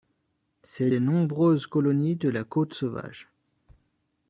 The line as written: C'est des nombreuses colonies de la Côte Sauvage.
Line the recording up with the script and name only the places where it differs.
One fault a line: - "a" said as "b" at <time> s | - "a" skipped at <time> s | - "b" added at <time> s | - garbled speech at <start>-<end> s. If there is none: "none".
none